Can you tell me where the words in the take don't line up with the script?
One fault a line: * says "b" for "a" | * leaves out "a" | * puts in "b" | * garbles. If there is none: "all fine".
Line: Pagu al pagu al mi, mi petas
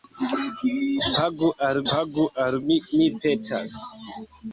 all fine